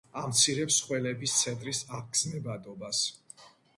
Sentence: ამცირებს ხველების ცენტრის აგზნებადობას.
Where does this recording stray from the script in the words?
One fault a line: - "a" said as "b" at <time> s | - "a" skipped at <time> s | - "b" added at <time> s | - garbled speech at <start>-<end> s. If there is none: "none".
none